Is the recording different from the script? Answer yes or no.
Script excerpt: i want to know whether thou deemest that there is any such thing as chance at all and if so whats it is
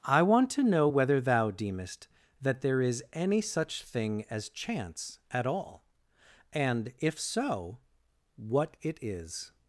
yes